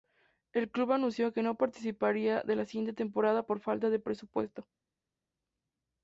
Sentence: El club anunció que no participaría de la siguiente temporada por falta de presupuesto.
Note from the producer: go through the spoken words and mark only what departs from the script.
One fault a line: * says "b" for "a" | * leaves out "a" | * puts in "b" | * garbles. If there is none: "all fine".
all fine